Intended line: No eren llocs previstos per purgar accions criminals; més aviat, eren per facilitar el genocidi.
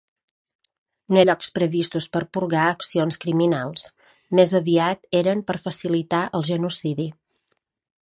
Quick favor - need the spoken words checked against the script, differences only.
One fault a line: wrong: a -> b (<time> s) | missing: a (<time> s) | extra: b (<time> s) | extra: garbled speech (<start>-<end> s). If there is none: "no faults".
missing: eren (1.2 s)